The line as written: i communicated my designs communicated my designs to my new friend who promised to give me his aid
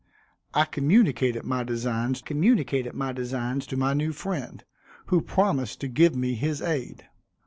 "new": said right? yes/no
yes